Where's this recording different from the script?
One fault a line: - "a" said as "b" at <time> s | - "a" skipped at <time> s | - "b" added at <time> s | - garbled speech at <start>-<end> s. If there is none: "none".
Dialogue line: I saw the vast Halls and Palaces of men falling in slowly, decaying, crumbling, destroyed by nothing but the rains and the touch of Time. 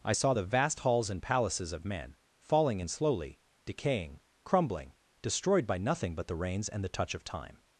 none